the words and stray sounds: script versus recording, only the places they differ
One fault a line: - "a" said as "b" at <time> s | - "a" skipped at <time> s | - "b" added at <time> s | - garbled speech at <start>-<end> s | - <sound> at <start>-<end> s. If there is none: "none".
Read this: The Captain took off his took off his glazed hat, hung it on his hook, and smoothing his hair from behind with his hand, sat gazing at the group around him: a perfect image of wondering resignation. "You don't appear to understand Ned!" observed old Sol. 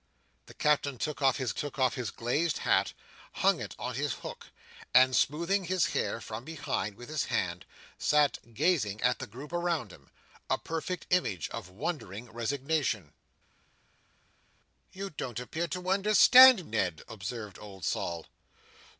none